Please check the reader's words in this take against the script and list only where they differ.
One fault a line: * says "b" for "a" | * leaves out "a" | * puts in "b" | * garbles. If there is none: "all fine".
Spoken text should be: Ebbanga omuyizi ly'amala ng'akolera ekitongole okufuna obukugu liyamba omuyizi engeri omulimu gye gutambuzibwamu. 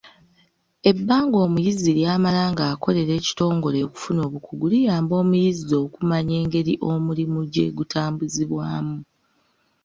* puts in "okumanya"